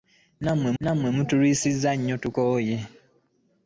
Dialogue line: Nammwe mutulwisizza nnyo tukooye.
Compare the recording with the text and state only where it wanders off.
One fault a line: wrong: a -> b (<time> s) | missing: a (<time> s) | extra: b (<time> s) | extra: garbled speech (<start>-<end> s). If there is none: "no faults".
extra: nammwe (0.8 s)